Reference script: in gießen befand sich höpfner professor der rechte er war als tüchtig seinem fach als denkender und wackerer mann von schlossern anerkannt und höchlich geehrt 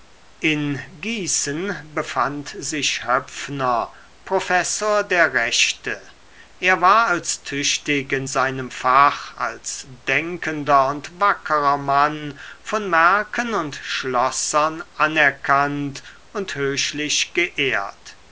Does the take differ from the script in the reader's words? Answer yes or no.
yes